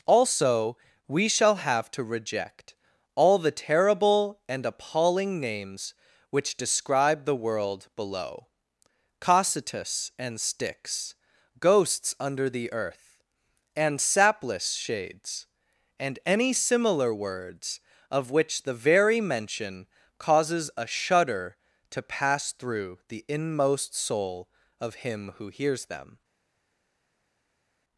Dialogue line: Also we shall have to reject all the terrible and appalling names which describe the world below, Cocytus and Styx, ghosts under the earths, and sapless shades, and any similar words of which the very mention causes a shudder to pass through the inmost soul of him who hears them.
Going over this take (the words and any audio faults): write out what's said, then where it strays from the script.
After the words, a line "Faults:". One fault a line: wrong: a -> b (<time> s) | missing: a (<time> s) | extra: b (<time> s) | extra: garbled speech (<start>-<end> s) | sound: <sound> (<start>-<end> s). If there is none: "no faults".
Also we shall have to reject all the terrible and appalling names which describe the world below, Cocytus and Styx, ghosts under the earth, and sapless shades, and any similar words of which the very mention causes a shudder to pass through the inmost soul of him who hears them.
Faults:
wrong: earths -> earth (12.7 s)